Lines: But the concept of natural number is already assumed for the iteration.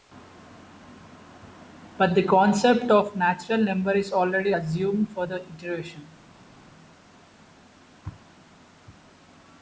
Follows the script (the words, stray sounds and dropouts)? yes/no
yes